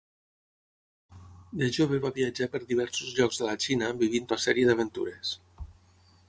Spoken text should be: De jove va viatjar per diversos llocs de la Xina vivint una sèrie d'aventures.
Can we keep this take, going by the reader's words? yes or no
yes